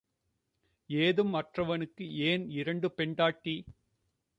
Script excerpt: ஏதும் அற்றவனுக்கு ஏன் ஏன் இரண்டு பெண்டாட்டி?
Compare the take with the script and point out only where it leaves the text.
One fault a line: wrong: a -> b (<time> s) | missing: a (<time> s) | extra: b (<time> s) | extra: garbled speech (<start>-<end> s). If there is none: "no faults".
missing: ஏன் (2.5 s)